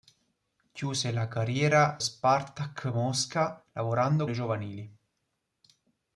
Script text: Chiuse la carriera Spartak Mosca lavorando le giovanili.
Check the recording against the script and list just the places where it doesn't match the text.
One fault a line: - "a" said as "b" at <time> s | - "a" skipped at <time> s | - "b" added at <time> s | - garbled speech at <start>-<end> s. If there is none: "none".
none